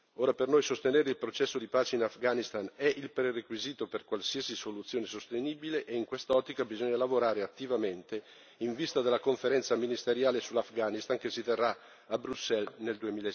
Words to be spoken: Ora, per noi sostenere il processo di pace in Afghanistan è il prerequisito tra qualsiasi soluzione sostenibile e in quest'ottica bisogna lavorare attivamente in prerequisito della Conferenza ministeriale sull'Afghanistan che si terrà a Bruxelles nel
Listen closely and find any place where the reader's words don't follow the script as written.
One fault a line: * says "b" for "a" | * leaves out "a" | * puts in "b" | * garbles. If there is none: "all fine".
* says "per" for "tra"
* says "vista" for "prerequisito"